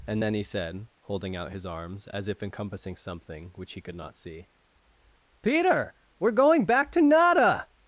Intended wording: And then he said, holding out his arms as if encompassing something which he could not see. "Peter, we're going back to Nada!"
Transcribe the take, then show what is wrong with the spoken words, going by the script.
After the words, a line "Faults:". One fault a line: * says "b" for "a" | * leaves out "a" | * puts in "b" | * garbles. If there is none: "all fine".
And then he said, holding out his arms as if encompassing something which he could not see. "Peter, we're going back to Nada!"
Faults:
all fine